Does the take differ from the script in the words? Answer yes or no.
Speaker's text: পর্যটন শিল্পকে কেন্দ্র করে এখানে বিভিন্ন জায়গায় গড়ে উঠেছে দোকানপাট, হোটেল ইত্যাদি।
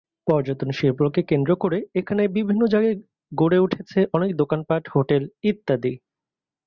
yes